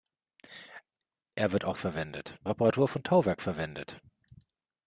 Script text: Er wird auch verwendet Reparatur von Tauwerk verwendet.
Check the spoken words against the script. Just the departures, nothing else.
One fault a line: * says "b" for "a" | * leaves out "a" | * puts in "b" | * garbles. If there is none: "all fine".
all fine